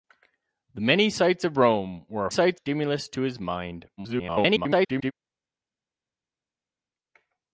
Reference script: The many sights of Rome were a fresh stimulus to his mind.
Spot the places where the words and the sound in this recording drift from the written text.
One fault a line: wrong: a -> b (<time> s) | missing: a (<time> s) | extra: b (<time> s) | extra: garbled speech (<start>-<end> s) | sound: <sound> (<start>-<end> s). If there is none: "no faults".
wrong: fresh -> sights (2.3 s)
extra: garbled speech (4.0-5.1 s)